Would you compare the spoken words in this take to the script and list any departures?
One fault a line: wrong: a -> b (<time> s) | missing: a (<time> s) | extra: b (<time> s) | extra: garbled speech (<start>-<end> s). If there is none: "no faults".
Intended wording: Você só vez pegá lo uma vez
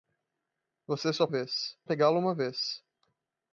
no faults